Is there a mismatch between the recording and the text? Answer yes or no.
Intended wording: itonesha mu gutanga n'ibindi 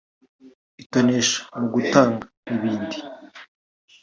no